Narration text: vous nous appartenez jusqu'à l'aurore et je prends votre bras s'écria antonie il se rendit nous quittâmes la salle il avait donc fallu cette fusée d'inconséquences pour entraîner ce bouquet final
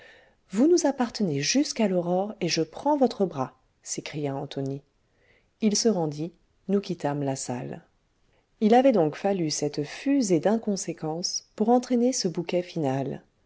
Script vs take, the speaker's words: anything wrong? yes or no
no